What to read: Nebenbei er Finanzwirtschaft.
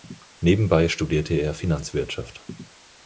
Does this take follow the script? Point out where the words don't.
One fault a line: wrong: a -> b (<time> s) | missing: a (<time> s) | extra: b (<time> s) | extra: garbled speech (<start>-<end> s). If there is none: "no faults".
extra: studierte (0.9 s)